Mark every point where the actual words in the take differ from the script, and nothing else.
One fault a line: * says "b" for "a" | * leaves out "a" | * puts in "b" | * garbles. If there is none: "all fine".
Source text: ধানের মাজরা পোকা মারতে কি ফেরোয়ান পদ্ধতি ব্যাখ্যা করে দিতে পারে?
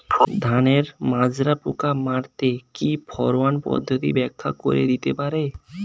all fine